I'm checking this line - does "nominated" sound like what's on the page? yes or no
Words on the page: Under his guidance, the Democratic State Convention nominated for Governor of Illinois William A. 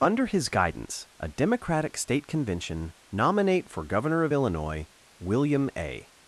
no